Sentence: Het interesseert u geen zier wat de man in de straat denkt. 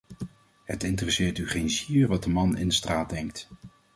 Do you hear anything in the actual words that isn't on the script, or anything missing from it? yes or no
no